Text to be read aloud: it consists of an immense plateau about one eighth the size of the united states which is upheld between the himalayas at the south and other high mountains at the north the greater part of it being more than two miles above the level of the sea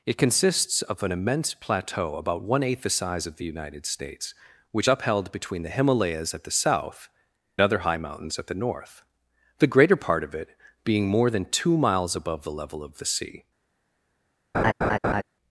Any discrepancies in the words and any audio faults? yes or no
yes